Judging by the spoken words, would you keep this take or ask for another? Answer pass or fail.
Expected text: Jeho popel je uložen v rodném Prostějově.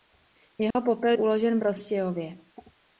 fail